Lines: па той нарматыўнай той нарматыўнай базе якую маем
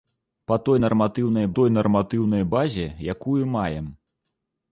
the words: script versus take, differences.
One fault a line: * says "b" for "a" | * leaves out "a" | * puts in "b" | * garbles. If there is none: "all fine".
all fine